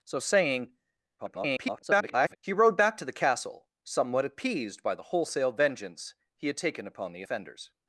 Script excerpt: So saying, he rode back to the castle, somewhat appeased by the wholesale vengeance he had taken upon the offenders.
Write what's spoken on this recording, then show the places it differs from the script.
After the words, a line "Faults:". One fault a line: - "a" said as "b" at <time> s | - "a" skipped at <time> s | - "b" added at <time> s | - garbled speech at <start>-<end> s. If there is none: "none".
So saying, [garbled] he rode back to the castle, somewhat appeased by the wholesale vengeance he had taken upon the offenders.
Faults:
- garbled speech at 1.2-2.4 s